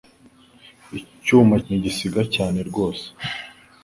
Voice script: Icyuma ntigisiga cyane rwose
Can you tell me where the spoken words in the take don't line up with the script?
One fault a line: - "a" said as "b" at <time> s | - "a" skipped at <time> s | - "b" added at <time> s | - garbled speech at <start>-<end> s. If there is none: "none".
none